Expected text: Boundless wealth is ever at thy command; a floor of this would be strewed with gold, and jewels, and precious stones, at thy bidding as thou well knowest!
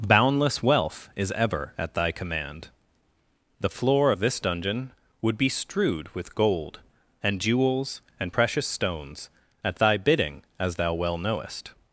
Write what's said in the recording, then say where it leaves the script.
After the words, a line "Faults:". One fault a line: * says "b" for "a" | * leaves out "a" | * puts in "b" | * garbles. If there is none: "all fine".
Boundless wealth is ever at thy command; the floor of this dungeon would be strewed with gold, and jewels, and precious stones, at thy bidding as thou well knowest!
Faults:
* says "the" for "a"
* puts in "dungeon"